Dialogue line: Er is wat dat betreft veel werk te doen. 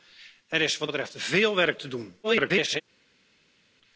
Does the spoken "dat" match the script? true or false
false